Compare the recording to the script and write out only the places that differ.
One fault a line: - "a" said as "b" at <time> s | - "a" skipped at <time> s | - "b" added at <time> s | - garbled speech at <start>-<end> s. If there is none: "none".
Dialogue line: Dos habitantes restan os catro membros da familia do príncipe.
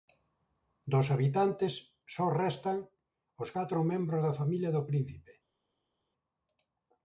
- "só" added at 2.1 s